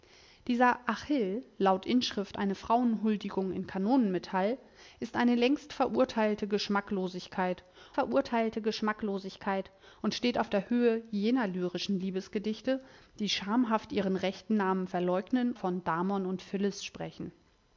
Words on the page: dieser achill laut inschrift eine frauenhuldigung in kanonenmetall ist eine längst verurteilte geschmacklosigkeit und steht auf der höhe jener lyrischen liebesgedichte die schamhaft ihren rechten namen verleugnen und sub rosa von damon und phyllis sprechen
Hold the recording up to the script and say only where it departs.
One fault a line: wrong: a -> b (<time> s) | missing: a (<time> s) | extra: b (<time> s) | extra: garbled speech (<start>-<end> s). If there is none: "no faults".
extra: verurteilte geschmacklosigkeit (7.9 s)
missing: und sub rosa (15.5 s)